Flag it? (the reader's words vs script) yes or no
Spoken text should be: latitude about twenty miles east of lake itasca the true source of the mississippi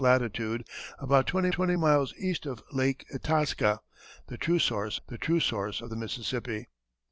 yes